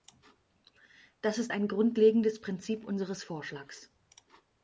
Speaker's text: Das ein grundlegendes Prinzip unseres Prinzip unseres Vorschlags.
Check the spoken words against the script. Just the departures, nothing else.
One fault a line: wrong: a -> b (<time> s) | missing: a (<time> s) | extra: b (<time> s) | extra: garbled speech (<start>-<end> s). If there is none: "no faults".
extra: ist (1.4 s)
missing: Prinzip unseres (3.2 s)